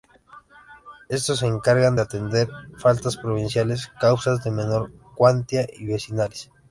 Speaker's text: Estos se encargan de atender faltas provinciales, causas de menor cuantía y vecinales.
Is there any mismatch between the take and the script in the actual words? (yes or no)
no